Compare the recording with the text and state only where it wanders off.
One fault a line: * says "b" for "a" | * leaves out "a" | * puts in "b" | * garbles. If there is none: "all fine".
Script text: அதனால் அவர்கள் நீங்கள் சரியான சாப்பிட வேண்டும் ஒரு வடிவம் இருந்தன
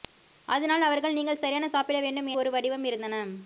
all fine